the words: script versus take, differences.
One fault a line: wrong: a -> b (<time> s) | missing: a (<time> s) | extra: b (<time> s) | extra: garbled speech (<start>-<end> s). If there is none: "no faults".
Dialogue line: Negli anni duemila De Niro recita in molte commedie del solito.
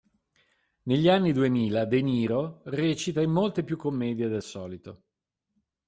extra: più (3.6 s)